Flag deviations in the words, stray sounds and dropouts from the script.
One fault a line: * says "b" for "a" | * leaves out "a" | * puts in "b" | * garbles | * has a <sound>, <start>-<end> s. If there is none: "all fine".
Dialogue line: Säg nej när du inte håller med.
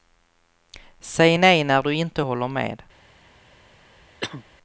* has a cough, 4.2-4.5 s